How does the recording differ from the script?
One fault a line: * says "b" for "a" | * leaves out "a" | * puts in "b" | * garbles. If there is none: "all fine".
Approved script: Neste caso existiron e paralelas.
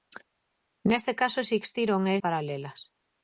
all fine